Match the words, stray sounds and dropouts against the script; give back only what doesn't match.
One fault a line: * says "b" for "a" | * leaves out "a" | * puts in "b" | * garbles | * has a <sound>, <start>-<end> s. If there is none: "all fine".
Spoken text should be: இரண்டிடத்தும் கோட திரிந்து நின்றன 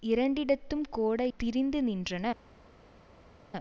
all fine